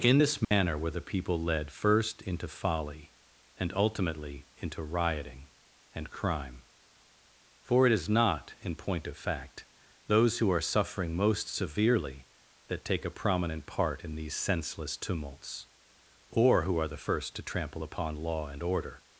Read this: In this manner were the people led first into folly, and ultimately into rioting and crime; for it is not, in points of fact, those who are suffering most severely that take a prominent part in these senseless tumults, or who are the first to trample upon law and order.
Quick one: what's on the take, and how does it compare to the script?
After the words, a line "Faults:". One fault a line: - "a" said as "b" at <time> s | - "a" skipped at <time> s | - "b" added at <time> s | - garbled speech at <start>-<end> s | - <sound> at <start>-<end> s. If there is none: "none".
In this manner were the people led first into folly, and ultimately into rioting and crime; for it is not, in point of fact, those who are suffering most severely that take a prominent part in these senseless tumults, or who are the first to trample upon law and order.
Faults:
- dropout at 0.4-0.5 s
- "points" said as "point" at 8.8 s